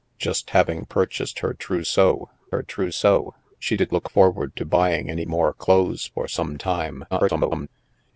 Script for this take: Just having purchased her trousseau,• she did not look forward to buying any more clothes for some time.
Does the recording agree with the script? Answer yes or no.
no